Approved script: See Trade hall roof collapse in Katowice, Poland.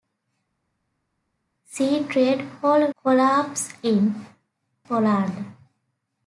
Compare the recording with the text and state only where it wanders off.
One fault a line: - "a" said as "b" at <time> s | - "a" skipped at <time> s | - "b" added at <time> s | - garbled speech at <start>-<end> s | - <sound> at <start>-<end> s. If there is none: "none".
- "roof" skipped at 2.9 s
- "Katowice" skipped at 4.3 s